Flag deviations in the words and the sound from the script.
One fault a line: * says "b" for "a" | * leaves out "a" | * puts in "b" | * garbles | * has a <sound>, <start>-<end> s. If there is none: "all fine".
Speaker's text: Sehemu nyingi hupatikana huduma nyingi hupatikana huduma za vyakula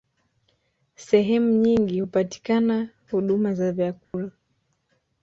* leaves out "nyingi hupatikana huduma"
* has a dropout, 4.0-4.1 s